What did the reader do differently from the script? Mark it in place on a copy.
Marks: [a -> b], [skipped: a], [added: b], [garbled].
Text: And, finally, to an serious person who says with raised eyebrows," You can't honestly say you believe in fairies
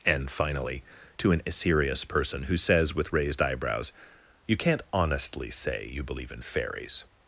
And, finally, to an serious person who says with raised eyebrows," You can't honestly say you believe in fairies